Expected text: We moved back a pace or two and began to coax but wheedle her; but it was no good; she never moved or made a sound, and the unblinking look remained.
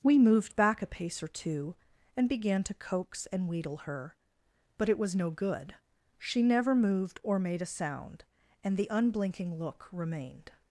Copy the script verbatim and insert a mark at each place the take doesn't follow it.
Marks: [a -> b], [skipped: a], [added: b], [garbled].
We moved back a pace or two and began to coax [but -> and] wheedle her; but it was no good; she never moved or made a sound, and the unblinking look remained.